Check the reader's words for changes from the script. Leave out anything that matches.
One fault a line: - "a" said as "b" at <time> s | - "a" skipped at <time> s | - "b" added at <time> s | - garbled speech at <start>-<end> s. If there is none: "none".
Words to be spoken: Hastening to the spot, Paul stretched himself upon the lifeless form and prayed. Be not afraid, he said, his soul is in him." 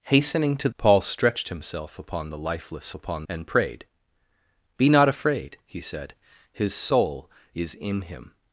- "the spot" skipped at 0.7 s
- "form" said as "upon" at 2.9 s